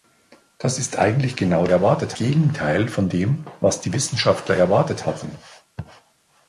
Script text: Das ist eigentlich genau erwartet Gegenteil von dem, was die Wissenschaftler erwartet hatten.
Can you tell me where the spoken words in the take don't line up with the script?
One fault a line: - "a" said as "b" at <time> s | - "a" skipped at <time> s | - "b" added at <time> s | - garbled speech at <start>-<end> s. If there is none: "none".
none